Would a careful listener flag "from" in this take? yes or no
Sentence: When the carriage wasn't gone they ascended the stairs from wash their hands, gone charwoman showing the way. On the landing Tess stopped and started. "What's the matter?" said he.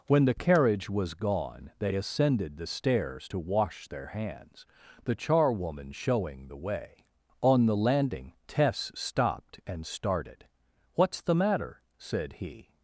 yes